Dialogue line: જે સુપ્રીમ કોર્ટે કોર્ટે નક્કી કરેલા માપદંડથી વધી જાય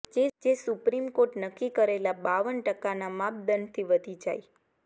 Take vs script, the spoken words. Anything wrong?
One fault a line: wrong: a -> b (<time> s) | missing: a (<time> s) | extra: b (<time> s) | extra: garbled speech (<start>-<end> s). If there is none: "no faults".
missing: કોર્ટે (1.4 s)
extra: બાવન ટકાના (2.2 s)